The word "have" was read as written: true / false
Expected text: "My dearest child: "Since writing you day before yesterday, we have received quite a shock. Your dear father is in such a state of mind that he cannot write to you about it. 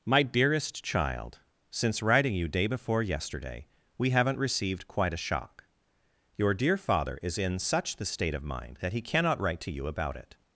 false